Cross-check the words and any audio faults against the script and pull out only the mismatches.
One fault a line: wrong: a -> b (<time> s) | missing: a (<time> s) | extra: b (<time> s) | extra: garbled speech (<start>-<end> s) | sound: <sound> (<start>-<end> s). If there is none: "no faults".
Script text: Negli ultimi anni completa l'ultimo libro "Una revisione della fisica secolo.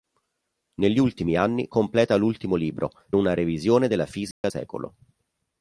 sound: dropout (4.3-4.4 s)